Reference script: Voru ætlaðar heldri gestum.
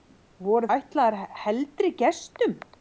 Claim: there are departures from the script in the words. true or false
false